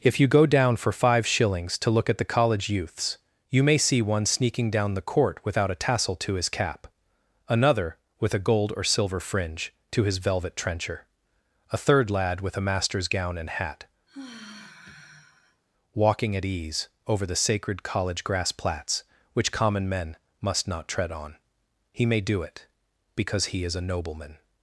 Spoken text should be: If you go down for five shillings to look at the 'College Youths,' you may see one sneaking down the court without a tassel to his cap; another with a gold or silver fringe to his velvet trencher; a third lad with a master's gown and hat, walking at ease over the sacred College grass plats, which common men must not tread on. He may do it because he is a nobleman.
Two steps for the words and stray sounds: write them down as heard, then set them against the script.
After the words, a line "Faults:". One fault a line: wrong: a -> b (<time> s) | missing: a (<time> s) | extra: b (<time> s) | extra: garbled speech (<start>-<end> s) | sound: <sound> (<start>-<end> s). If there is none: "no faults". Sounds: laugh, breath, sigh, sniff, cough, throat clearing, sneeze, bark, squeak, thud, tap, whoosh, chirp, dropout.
If you go down for five shillings to look at the 'College Youths,' you may see one sneaking down the court without a tassel to his cap; another with a gold or silver fringe to his velvet trencher; a third lad with a master's gown and hat, walking at ease over the sacred College grass plats, which common men must not tread on. He may do it because he is a nobleman.
Faults:
sound: sigh (14.1-15.6 s)